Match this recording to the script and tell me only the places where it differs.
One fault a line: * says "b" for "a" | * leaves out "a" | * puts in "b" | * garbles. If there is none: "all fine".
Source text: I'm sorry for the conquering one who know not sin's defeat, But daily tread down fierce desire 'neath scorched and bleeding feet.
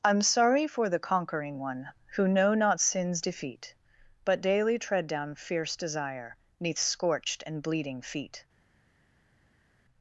all fine